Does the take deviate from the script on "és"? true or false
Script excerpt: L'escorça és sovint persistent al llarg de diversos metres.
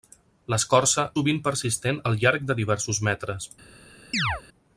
true